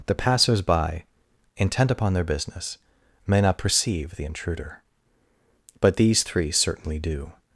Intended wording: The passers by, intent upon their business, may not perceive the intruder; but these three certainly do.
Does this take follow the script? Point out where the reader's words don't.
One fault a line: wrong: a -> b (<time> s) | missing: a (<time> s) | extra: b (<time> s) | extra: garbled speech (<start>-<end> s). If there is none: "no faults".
no faults